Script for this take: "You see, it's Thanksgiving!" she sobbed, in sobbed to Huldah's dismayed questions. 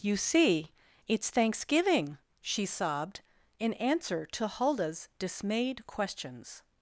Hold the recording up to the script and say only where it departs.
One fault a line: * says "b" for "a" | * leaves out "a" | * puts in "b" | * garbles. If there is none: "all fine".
* says "answer" for "sobbed"